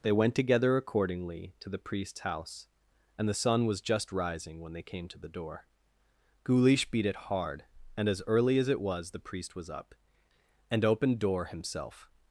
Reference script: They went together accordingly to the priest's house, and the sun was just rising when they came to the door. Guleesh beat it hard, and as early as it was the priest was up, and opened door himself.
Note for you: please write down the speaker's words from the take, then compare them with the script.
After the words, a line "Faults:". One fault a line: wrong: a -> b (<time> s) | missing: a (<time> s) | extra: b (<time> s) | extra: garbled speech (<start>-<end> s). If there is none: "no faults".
They went together accordingly to the priest's house, and the sun was just rising when they came to the door. Guleesh beat it hard, and as early as it was the priest was up, and opened door himself.
Faults:
no faults